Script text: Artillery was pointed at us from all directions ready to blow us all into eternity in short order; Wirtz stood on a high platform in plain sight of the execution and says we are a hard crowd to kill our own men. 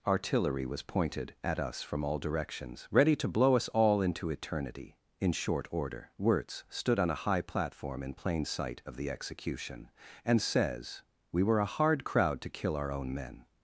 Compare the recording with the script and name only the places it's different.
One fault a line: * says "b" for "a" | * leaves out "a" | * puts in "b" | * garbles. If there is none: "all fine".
* says "were" for "are"